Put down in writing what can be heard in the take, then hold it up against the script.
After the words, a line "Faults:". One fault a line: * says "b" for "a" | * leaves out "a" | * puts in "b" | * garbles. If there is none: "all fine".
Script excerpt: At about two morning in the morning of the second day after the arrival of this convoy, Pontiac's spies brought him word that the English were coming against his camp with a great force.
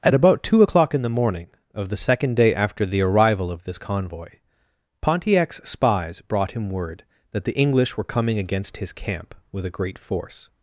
At about two o'clock in the morning of the second day after the arrival of this convoy, Pontiac's spies brought him word that the English were coming against his camp with a great force.
Faults:
* says "o'clock" for "morning"